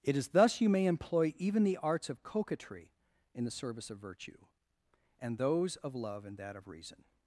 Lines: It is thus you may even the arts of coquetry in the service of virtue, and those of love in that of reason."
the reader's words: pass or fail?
fail